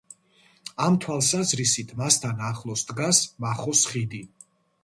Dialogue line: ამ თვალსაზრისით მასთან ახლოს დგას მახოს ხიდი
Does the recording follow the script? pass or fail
pass